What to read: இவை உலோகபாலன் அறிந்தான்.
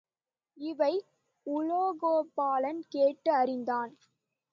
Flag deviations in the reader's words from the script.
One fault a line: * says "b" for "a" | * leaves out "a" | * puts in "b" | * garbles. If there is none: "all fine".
* puts in "கேட்டு"